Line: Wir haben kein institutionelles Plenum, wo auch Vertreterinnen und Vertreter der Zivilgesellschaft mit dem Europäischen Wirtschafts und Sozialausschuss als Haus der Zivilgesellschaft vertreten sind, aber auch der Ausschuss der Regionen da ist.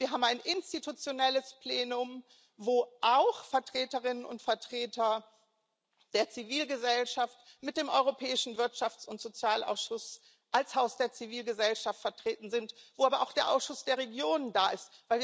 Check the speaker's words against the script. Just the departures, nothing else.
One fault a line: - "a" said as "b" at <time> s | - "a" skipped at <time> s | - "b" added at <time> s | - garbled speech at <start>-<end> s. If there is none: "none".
- "kein" said as "ein" at 0.2 s
- "wo" added at 12.9 s